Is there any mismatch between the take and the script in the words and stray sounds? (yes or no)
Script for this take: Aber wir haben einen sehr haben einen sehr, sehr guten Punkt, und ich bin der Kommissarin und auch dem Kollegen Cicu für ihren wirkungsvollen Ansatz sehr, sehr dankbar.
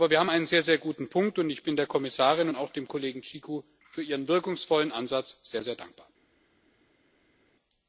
yes